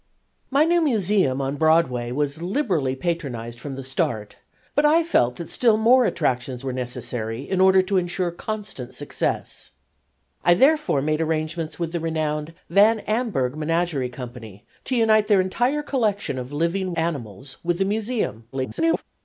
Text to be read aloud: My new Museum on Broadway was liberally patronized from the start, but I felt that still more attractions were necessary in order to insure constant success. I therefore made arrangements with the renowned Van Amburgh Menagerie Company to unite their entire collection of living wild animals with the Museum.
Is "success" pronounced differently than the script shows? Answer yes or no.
no